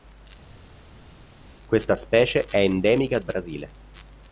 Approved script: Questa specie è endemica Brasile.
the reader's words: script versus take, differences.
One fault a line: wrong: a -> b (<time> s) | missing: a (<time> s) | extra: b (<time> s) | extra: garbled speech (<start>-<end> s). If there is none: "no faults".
no faults